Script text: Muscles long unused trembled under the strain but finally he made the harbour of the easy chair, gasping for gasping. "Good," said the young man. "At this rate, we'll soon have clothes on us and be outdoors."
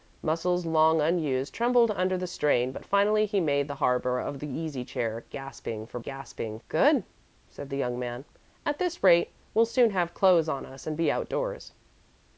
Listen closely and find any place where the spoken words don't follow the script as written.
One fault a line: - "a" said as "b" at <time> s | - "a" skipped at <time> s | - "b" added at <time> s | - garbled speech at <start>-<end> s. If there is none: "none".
none